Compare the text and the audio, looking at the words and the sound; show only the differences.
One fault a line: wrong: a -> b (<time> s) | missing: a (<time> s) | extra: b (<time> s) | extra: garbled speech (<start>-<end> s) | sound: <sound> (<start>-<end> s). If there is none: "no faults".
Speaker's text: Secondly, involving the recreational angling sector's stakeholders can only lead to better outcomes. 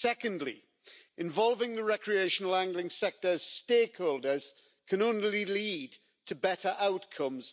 no faults